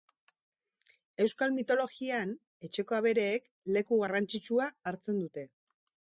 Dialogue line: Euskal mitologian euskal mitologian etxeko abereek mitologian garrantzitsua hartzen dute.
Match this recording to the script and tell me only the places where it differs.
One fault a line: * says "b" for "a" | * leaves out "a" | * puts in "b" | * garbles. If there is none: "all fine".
* leaves out "euskal mitologian"
* says "leku" for "mitologian"